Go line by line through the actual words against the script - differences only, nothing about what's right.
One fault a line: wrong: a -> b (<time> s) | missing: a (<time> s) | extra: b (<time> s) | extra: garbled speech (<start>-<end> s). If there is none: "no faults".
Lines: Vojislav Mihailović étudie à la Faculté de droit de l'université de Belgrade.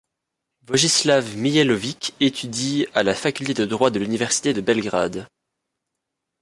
no faults